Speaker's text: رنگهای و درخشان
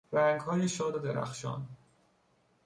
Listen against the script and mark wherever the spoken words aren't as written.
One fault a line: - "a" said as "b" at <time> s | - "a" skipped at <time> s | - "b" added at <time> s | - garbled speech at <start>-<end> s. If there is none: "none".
- "شاد" added at 0.7 s